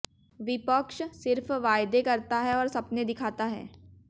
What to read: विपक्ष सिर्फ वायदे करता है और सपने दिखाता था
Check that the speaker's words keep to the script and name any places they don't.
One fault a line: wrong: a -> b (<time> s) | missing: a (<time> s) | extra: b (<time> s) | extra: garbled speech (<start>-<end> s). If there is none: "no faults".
wrong: था -> है (3.4 s)